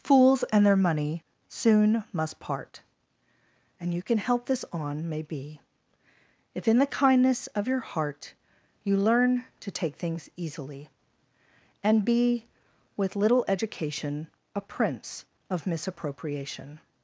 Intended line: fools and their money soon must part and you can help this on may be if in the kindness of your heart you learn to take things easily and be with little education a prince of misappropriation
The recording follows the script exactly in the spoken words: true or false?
true